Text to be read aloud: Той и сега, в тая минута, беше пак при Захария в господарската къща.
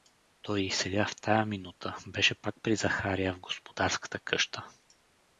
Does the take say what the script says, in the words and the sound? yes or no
yes